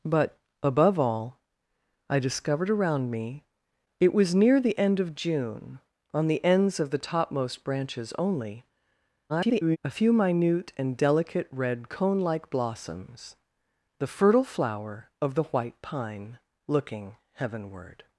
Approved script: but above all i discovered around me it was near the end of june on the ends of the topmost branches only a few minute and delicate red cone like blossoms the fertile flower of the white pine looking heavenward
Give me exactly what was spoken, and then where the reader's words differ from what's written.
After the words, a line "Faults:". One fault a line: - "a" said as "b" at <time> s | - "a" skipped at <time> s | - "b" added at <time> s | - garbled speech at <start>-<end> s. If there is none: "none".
but above all i discovered around me it was near the end of june on the ends of the topmost branches only [garbled] a few minute and delicate red cone like blossoms the fertile flower of the white pine looking heavenward
Faults:
- garbled speech at 9.3-9.8 s